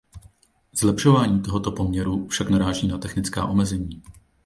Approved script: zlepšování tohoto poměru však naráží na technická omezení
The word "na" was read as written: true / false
true